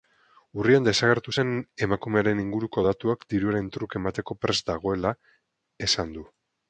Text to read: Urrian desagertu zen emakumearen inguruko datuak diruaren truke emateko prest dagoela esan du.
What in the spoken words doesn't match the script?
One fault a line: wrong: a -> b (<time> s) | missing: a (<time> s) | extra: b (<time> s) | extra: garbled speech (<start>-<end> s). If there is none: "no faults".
no faults